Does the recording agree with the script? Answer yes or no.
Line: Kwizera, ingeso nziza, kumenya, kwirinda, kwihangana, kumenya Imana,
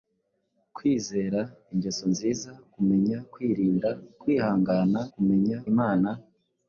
yes